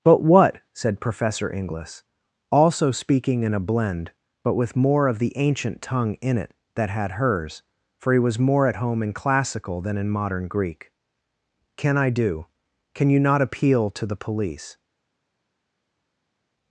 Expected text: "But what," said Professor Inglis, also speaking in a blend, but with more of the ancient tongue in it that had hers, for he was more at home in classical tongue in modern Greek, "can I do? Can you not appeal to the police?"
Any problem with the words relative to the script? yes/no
yes